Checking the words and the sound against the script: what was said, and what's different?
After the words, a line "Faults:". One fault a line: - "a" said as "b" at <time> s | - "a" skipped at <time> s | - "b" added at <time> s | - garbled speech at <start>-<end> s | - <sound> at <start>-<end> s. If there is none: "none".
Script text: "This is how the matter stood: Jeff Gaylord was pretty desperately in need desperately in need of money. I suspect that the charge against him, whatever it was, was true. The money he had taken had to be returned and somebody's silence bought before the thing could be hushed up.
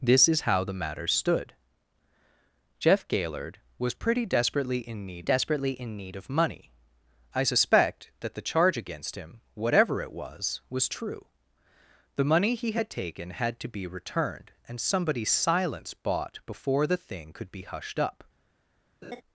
"This is how the matter stood: Jeff Gaylord was pretty desperately in need desperately in need of money. I suspect that the charge against him, whatever it was, was true. The money he had taken had to be returned and somebody's silence bought before the thing could be hushed up.
Faults:
- laugh at 19.0-19.2 s